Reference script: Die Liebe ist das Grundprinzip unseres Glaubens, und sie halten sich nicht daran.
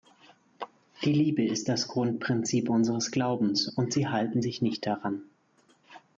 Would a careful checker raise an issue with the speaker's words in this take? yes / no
no